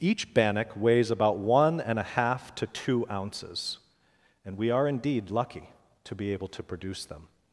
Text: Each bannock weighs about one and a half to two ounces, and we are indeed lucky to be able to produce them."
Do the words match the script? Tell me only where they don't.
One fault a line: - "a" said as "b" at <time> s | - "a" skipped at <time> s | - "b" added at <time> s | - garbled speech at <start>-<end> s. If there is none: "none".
none